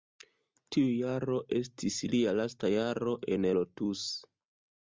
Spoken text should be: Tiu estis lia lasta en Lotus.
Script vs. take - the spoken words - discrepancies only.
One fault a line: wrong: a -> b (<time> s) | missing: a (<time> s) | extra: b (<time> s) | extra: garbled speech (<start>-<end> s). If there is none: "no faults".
extra: jaro (1.0 s)
extra: jaro (2.8 s)